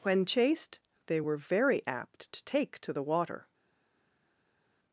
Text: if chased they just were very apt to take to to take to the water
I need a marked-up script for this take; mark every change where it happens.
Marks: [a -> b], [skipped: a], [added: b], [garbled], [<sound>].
[if -> when] chased they [skipped: just] were very apt to take to [skipped: to take to] the water